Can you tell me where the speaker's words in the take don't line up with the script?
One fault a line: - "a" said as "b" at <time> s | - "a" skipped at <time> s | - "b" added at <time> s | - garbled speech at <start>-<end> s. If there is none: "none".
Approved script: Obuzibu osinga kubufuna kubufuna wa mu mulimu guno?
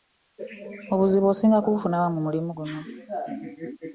- "kubufuna" skipped at 2.0 s